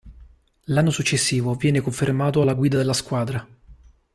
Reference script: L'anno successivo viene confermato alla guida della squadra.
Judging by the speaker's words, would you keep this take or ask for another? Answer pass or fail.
pass